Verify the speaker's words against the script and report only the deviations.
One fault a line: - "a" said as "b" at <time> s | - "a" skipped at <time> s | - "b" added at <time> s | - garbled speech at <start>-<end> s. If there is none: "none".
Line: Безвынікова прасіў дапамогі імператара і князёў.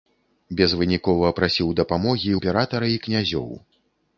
none